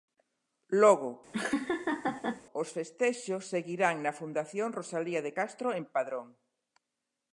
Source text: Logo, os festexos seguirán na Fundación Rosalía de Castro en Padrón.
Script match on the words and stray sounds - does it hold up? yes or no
no